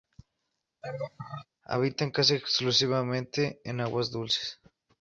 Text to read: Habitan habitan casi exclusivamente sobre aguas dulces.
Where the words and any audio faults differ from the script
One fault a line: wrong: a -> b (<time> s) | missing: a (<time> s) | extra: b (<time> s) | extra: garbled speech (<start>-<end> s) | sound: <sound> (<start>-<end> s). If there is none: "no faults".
sound: laugh (0.8-1.5 s)
missing: habitan (2.1 s)
wrong: sobre -> en (3.7 s)